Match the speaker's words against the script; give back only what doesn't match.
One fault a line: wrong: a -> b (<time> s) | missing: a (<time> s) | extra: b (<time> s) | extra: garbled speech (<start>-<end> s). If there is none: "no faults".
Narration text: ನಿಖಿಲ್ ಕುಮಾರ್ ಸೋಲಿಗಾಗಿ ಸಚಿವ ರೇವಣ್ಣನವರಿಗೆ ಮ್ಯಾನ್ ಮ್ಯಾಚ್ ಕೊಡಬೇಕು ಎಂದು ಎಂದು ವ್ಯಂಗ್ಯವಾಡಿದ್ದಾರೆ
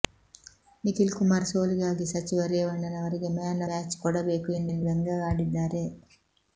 no faults